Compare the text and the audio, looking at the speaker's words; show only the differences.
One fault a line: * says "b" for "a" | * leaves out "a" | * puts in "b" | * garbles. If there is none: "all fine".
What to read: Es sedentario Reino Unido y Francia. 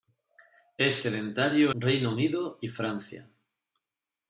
all fine